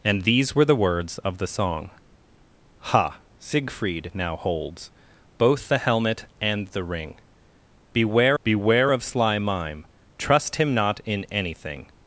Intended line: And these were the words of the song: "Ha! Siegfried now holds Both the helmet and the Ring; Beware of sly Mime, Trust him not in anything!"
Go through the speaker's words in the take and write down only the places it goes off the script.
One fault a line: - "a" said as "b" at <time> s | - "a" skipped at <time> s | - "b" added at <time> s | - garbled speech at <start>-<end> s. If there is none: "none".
- "Beware" added at 8.4 s